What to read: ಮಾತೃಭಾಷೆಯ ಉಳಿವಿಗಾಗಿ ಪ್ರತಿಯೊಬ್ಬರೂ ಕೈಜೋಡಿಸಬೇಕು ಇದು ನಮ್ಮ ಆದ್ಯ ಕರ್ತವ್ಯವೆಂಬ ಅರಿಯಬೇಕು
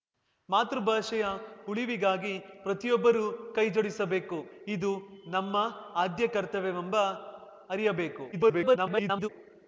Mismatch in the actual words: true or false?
true